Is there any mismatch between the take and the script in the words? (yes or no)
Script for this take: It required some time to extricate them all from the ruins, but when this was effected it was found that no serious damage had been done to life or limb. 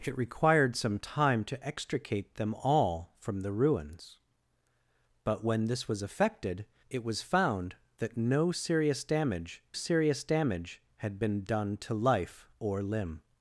yes